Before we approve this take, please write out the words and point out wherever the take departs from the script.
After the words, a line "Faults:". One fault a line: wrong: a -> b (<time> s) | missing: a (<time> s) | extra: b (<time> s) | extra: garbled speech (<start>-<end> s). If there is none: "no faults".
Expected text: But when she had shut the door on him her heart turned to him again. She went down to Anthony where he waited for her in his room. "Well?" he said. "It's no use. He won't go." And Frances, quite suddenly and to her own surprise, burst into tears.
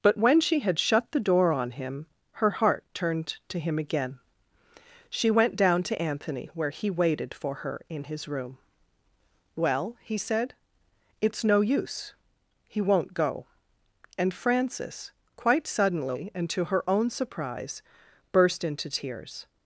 But when she had shut the door on him her heart turned to him again. She went down to Anthony where he waited for her in his room. "Well?" he said. "It's no use. He won't go." And Frances, quite suddenly and to her own surprise, burst into tears.
Faults:
no faults